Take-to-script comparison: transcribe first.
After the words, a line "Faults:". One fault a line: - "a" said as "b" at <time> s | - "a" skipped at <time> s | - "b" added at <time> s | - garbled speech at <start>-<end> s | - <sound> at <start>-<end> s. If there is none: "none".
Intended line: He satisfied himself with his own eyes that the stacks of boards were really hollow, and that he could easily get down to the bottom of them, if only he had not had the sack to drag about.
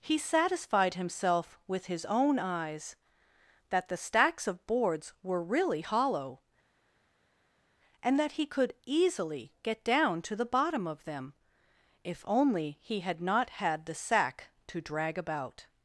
He satisfied himself with his own eyes that the stacks of boards were really hollow, and that he could easily get down to the bottom of them, if only he had not had the sack to drag about.
Faults:
none